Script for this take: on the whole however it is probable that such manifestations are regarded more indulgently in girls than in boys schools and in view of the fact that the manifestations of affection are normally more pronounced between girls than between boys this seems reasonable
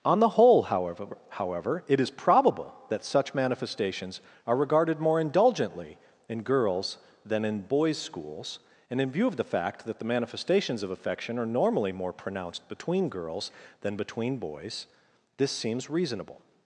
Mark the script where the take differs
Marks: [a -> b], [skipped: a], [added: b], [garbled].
on the whole however [added: however] it is probable that such manifestations are regarded more indulgently in girls than in boys schools and in view of the fact that the manifestations of affection are normally more pronounced between girls than between boys this seems reasonable